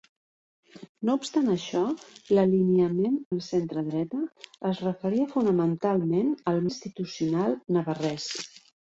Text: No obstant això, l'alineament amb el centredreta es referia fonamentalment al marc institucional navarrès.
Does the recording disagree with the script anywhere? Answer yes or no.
yes